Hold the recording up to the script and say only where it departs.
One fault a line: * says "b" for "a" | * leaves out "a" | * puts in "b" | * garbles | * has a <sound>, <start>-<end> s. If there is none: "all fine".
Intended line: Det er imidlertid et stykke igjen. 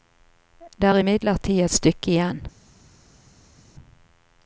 all fine